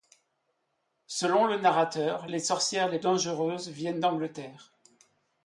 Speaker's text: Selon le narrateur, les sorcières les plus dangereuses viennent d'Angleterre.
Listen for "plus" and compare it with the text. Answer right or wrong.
wrong